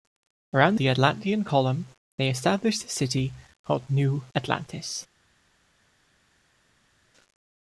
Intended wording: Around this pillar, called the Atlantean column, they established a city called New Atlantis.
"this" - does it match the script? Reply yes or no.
no